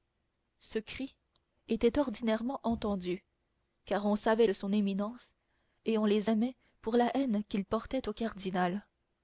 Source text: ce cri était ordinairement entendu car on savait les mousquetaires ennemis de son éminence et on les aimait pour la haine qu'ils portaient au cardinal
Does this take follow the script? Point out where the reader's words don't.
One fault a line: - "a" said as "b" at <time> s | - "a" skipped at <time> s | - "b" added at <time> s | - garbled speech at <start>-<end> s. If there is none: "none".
- "les mousquetaires ennemis" skipped at 4.5 s